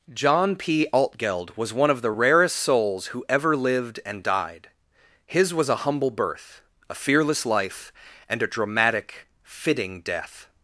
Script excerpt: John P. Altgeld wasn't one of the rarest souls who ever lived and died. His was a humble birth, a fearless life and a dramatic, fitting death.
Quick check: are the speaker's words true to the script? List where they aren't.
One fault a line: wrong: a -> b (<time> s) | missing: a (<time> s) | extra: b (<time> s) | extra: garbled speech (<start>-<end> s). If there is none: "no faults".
wrong: wasn't -> was (1.6 s)